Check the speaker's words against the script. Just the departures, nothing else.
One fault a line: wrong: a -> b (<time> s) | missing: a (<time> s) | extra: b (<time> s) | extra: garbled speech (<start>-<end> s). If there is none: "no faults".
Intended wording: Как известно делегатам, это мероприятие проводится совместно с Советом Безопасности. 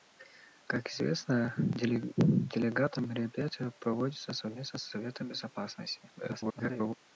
missing: это (3.0 s)
extra: garbled speech (6.2-6.9 s)